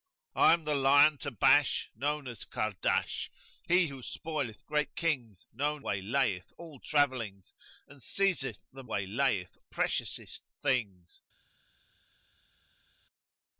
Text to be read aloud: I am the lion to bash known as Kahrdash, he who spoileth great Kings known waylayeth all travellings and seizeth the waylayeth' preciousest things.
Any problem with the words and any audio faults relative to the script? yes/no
no